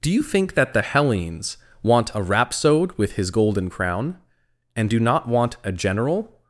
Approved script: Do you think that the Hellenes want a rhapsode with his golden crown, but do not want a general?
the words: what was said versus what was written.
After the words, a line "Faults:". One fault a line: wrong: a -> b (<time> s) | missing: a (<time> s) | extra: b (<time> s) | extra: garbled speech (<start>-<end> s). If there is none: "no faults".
Do you think that the Hellenes want a rhapsode with his golden crown, and do not want a general?
Faults:
wrong: but -> and (4.8 s)